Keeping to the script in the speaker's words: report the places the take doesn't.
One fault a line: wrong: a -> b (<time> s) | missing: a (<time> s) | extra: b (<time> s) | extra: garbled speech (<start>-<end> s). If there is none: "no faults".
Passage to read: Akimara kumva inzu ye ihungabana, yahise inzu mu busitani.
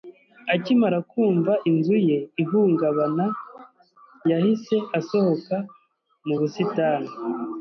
wrong: inzu -> asohoka (5.0 s)